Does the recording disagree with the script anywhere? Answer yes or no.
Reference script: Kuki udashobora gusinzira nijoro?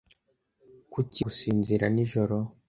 yes